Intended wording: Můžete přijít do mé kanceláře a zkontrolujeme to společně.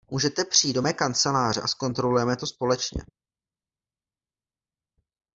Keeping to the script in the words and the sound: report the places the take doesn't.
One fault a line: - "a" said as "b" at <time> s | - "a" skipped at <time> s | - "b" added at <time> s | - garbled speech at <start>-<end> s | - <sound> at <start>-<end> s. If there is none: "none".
none